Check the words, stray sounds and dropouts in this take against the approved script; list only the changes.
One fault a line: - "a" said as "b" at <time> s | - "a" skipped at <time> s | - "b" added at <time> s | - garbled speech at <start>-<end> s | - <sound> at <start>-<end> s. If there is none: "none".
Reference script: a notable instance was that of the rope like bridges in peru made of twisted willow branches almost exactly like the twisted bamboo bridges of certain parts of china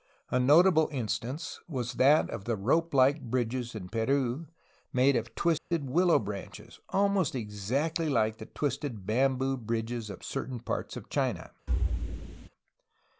- dropout at 5.6-5.7 s
- thud at 11.7-12.5 s